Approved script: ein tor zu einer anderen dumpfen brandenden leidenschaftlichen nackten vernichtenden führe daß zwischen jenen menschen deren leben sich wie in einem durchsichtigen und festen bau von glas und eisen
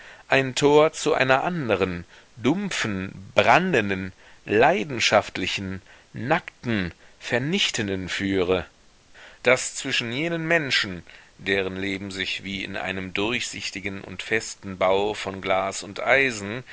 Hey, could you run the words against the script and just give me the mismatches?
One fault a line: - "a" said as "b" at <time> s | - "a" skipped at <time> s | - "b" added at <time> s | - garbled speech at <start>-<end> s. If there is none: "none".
none